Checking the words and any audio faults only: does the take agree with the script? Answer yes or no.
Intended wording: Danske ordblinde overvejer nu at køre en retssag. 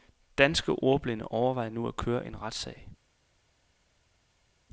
yes